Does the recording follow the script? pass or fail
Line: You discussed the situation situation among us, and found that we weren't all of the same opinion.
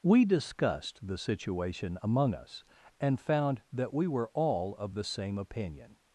fail